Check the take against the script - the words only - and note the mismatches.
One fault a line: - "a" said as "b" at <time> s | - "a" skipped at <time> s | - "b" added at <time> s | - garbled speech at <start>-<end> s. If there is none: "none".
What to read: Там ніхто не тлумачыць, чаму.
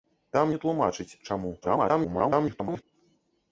- "ніхто" skipped at 0.5 s
- garbled speech at 1.6-2.8 s